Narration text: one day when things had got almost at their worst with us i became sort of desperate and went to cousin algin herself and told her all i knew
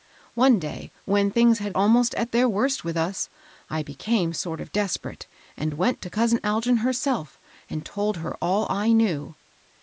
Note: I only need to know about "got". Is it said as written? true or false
false